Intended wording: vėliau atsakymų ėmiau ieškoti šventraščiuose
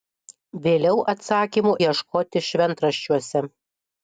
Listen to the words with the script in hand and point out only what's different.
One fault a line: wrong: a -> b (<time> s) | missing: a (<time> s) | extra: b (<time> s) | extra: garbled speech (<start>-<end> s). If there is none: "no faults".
missing: ėmiau (1.7 s)